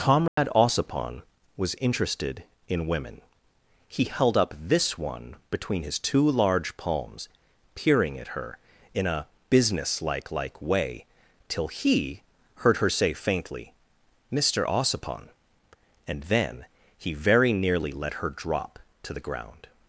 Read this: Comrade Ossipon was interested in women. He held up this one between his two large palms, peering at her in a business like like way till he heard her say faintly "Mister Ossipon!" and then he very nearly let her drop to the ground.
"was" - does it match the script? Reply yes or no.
yes